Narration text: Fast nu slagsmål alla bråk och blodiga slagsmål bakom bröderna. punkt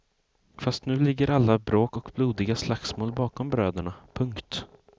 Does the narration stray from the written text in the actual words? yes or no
yes